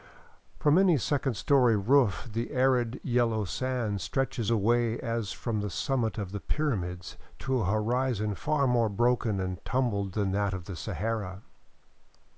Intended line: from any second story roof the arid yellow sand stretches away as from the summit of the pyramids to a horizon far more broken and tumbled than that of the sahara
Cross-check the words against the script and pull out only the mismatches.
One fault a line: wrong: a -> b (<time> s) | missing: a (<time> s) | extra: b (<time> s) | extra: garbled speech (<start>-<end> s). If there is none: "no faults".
no faults